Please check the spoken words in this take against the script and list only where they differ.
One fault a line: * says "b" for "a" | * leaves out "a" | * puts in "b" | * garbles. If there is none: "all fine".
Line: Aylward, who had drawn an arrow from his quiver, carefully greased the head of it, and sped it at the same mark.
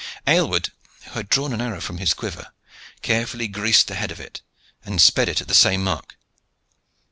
all fine